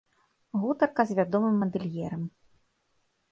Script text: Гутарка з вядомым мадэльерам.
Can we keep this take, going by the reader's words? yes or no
yes